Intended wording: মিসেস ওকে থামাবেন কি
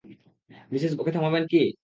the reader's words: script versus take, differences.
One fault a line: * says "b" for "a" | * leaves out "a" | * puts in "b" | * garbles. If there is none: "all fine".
all fine